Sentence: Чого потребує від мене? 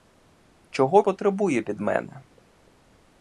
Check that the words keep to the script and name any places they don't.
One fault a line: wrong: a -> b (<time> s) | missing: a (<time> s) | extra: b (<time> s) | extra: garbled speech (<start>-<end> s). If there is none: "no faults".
no faults